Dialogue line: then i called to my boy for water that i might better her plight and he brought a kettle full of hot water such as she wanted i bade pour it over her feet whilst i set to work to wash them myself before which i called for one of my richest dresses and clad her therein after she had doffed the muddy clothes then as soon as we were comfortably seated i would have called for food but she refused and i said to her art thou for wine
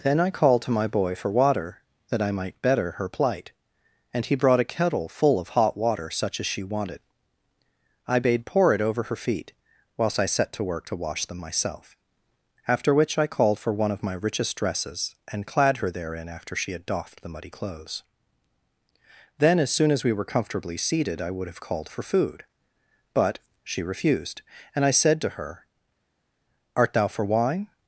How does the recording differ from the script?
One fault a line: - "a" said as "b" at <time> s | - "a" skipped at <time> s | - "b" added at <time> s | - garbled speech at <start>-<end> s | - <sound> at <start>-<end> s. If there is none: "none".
- "before" said as "after" at 12.7 s